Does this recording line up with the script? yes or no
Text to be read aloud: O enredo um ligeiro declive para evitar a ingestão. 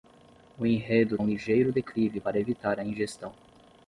yes